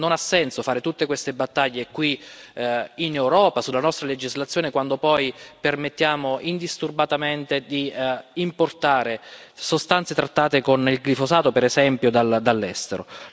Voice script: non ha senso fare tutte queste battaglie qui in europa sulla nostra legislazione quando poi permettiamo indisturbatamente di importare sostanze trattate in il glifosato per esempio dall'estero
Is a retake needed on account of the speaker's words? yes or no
yes